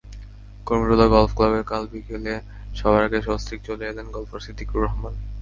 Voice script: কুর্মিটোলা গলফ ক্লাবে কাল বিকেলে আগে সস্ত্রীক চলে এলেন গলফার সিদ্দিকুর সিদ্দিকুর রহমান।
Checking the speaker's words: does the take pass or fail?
fail